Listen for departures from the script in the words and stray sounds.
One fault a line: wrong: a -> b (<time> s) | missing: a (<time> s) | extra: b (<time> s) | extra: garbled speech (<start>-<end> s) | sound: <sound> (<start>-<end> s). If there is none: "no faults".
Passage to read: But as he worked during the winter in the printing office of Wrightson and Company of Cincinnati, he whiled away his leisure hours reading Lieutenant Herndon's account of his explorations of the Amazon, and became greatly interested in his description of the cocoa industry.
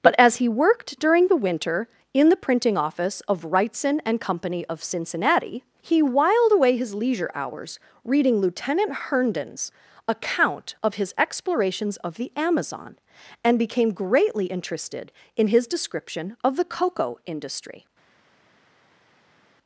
no faults